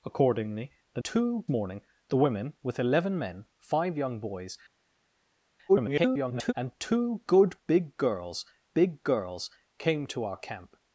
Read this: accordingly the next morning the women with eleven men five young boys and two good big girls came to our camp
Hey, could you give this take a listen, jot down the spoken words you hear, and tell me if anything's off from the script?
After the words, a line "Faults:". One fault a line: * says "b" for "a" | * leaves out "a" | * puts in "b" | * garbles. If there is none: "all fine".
accordingly the two morning the women with eleven men five young boys [garbled] and two good big girls big girls came to our camp
Faults:
* says "two" for "next"
* garbles
* puts in "big girls"